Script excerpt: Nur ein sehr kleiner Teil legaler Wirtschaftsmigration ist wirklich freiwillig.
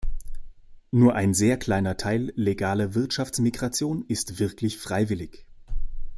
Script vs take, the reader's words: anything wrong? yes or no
no